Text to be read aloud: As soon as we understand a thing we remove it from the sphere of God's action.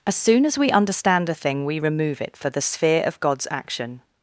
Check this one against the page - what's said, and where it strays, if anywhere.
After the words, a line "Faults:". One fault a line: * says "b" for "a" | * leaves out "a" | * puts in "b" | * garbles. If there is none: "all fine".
As soon as we understand a thing we remove it for the sphere of God's action.
Faults:
* says "for" for "from"